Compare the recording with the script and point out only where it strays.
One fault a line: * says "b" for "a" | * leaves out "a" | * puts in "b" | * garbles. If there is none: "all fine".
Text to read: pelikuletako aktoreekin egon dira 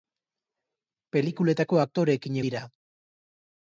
* leaves out "egon"